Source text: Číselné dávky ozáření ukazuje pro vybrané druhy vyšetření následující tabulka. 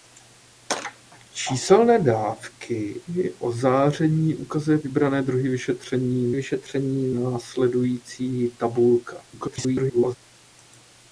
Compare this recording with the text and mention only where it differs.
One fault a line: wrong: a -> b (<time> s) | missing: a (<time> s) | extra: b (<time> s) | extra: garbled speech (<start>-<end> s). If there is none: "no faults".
missing: pro (4.8 s)
extra: vyšetření (6.3 s)
extra: garbled speech (9.3-10.2 s)